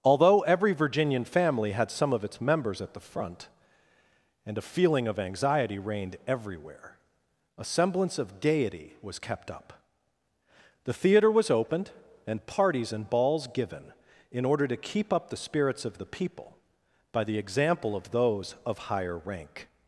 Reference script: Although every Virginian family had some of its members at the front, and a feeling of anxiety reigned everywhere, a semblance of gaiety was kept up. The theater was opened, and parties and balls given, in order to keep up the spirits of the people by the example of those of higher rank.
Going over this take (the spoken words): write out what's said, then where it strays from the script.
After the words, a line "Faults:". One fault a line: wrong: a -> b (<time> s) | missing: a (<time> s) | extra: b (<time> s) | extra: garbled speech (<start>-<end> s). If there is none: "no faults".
Although every Virginian family had some of its members at the front, and a feeling of anxiety reigned everywhere, a semblance of gaiety was kept up. The theater was opened, and parties and balls given, in order to keep up the spirits of the people by the example of those of higher rank.
Faults:
no faults